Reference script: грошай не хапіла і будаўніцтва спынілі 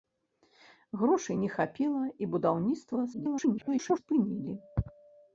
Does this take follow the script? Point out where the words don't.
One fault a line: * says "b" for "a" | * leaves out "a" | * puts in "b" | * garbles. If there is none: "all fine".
* garbles